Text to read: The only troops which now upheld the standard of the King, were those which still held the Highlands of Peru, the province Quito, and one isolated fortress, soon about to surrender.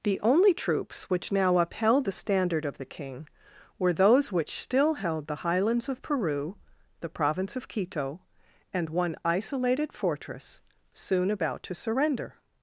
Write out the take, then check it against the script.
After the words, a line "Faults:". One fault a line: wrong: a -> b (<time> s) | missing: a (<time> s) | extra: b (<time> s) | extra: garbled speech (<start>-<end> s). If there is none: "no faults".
The only troops which now upheld the standard of the King, were those which still held the Highlands of Peru, the province of Quito, and one isolated fortress, soon about to surrender.
Faults:
extra: of (7.6 s)